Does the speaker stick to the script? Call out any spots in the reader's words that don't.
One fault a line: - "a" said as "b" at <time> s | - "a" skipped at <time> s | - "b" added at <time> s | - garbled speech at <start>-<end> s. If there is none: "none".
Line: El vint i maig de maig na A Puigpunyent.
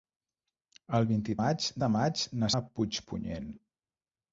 none